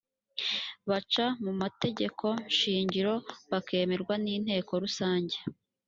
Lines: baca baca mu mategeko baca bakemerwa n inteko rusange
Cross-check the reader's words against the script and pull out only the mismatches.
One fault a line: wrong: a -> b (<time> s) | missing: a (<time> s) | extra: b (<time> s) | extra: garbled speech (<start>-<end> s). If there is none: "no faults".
missing: baca (1.2 s)
wrong: baca -> shingiro (2.6 s)